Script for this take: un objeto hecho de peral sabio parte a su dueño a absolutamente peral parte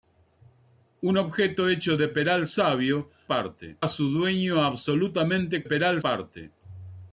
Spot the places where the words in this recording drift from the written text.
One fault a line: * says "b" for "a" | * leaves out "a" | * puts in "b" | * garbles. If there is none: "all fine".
all fine